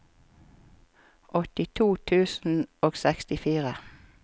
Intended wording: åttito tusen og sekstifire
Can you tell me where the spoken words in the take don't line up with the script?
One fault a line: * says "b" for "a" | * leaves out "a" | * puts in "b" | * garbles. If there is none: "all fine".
all fine